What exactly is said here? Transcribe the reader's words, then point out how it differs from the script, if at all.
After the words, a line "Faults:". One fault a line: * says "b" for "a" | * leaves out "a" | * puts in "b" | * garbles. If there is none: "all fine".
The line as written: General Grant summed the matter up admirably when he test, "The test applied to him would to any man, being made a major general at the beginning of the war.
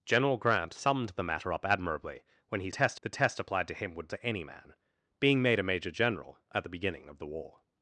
General Grant summed the matter up admirably when he test, "The test applied to him would to any man, being made a major general at the beginning of the war.
Faults:
all fine